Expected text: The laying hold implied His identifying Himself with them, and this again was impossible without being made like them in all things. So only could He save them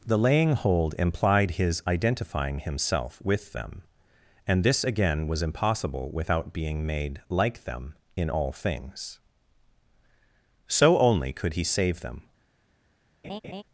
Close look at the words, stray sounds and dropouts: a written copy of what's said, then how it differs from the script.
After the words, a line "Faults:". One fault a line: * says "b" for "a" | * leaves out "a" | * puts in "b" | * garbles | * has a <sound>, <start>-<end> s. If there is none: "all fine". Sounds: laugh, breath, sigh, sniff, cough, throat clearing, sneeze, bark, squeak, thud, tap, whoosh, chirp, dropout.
The laying hold implied His identifying Himself with them, and this again was impossible without being made like them in all things. So only could He save them
Faults:
* has a laugh, 13.2-13.6 s